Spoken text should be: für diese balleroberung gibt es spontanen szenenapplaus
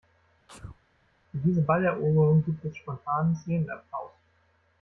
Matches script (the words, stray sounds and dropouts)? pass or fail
fail